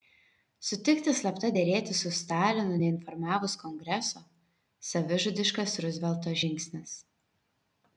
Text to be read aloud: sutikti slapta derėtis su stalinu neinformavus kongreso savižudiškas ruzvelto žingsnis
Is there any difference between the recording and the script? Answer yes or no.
no